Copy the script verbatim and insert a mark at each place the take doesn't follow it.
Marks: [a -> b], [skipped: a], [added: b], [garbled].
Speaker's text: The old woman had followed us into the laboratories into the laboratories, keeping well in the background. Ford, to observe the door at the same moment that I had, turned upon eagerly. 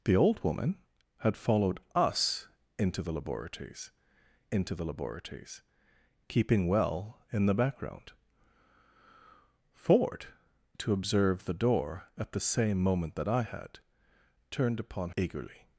The old woman had followed us into the laboratories into the laboratories, keeping well in the background. Ford, to observe the door at the same moment that I had, turned upon eagerly.